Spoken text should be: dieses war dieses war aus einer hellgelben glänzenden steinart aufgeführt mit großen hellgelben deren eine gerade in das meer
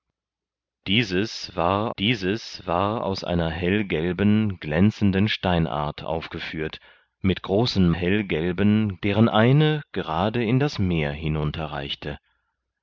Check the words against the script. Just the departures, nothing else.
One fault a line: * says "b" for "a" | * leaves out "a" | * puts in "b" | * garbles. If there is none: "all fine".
all fine